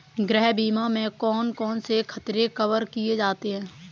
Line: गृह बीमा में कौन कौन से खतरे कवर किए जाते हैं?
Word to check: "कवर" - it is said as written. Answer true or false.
true